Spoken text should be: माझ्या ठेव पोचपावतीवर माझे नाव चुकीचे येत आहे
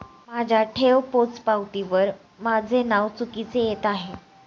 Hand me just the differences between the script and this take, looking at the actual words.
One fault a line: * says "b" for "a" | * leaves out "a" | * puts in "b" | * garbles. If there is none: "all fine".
all fine